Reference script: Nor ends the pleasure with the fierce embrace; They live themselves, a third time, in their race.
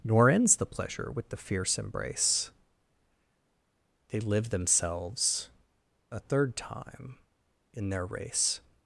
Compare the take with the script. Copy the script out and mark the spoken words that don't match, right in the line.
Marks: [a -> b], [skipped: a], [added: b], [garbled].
Nor ends the pleasure with the fierce embrace; They live themselves, a third time, in their race.